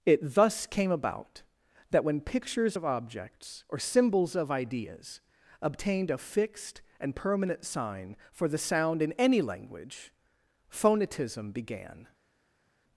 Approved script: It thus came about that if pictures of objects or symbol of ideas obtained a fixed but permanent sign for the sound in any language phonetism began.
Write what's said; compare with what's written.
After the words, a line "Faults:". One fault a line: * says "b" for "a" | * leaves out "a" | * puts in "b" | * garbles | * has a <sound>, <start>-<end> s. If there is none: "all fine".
It thus came about that when pictures of objects or symbols of ideas obtained a fixed and permanent sign for the sound in any language phonetism began.
Faults:
* says "when" for "if"
* says "symbols" for "symbol"
* says "and" for "but"